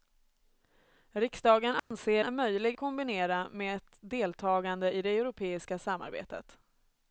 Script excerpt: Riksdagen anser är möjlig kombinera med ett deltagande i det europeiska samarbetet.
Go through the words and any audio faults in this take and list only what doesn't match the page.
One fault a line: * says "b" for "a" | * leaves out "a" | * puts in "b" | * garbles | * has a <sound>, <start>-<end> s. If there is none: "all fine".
* has a dropout, 1.8-1.9 s